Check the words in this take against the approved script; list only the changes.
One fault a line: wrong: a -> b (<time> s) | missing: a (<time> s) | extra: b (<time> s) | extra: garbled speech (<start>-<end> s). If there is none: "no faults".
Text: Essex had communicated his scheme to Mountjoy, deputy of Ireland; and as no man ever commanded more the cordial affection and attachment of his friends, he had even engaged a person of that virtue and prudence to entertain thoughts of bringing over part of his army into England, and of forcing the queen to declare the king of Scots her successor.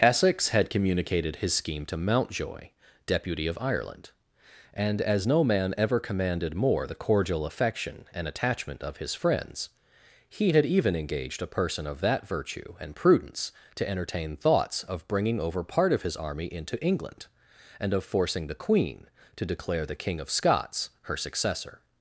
no faults